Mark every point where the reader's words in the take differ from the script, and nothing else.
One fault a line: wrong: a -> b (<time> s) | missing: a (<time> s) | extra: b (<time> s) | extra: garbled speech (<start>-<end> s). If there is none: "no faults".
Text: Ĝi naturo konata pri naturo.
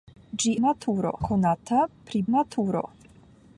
no faults